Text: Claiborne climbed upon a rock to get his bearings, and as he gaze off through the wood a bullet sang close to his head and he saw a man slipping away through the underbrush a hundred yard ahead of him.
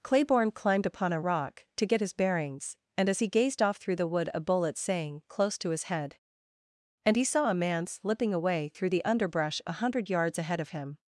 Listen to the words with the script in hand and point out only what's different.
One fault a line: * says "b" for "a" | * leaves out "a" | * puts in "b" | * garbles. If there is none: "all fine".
* says "gazed" for "gaze"
* says "yards" for "yard"